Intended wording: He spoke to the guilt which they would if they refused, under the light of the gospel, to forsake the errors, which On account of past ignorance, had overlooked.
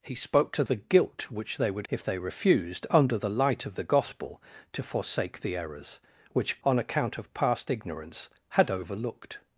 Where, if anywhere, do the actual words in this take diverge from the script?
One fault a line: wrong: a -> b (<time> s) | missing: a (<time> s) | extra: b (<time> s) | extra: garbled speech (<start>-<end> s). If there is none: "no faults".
no faults